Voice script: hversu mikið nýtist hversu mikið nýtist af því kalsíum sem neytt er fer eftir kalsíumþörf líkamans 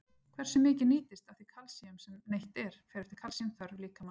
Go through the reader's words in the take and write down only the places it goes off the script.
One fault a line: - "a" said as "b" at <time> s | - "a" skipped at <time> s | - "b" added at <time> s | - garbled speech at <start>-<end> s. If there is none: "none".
- "hversu mikið nýtist" skipped at 1.3 s